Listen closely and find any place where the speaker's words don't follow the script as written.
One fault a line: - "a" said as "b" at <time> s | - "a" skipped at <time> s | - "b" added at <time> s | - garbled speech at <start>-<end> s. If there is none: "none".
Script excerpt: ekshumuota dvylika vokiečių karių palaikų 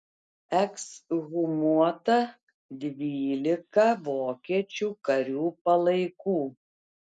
none